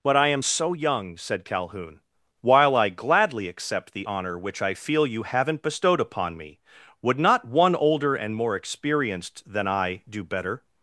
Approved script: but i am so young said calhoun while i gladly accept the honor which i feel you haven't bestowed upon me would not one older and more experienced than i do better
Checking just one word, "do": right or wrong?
right